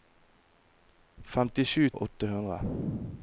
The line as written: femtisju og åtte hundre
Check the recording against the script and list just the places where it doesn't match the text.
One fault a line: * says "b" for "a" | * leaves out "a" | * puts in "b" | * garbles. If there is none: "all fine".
all fine